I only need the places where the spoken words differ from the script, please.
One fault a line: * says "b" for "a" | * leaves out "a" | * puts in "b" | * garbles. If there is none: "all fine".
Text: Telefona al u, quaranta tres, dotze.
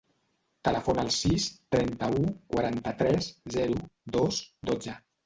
* puts in "sis trenta"
* puts in "zero dos"